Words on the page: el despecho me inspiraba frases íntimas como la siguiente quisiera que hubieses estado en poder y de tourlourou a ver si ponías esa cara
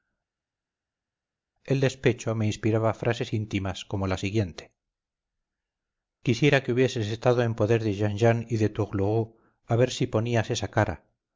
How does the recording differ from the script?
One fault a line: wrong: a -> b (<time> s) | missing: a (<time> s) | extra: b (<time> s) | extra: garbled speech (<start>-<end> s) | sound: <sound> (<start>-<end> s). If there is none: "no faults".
extra: de jean jean (7.8 s)